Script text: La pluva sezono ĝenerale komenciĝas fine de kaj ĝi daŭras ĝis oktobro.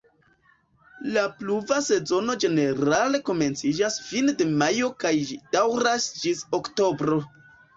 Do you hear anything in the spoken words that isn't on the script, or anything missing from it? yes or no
yes